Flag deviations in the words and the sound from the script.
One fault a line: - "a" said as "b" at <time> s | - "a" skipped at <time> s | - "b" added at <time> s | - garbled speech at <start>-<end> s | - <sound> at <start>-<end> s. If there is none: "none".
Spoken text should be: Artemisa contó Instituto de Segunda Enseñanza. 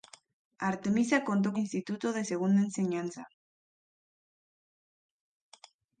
none